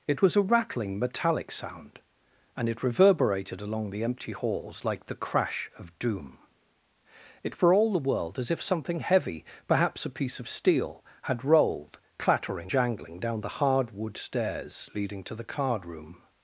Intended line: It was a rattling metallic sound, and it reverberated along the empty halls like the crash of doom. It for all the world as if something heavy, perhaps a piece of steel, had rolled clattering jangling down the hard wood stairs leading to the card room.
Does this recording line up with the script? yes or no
yes